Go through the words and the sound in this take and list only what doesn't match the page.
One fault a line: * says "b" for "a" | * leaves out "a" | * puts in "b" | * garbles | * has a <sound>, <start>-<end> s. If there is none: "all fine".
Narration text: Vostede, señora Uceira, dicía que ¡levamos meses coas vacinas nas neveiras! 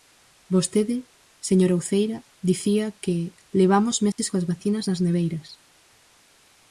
* has a dropout, 4.1-4.2 s